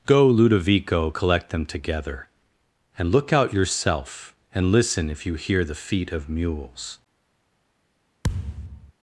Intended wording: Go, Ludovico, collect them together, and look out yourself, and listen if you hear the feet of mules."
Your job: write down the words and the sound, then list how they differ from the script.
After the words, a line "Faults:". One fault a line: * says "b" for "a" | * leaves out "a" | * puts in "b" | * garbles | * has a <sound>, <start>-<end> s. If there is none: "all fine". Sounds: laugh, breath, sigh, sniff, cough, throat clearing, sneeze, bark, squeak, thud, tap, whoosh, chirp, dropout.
Go, Ludovico, collect them together, and look out yourself, and listen if you hear the feet of mules."
Faults:
* has a thud, 8.2-8.9 s